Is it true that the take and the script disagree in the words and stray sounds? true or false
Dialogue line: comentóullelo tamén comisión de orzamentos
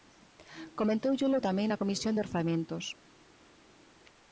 true